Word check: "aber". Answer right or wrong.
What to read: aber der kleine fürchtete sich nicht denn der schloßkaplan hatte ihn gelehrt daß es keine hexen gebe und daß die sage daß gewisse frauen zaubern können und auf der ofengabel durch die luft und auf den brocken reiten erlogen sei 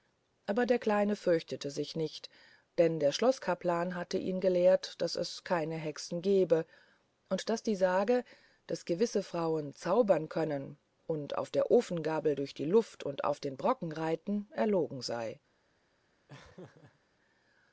right